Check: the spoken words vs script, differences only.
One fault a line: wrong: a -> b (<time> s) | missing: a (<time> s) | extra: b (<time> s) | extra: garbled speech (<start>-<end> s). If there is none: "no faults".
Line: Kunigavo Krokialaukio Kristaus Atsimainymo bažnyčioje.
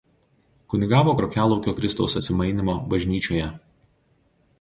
no faults